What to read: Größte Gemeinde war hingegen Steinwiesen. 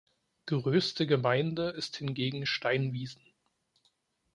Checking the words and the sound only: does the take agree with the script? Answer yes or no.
no